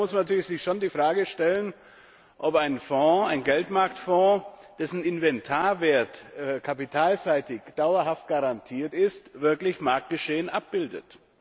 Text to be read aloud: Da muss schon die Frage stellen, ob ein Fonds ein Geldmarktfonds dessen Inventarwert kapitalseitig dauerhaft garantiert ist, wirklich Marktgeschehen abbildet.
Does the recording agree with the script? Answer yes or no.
no